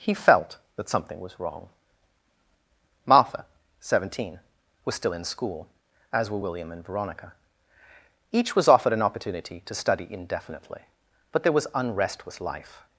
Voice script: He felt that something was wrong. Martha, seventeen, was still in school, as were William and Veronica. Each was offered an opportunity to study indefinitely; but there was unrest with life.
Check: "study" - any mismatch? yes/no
no